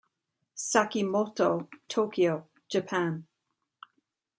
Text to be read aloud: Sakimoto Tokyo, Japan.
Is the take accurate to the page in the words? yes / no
yes